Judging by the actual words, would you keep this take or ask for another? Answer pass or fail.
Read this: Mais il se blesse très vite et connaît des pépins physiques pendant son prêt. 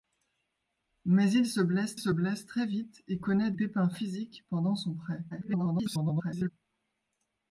fail